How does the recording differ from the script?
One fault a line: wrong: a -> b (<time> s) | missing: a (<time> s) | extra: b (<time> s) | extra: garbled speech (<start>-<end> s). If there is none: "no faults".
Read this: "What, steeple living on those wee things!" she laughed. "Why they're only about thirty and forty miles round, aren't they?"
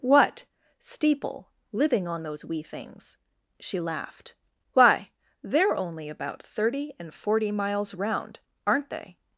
no faults